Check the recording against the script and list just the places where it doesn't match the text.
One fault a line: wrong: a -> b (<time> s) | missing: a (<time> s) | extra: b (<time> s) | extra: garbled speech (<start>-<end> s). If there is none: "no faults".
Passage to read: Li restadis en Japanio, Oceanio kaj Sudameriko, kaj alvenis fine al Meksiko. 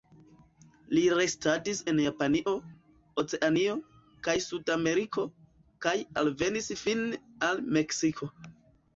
no faults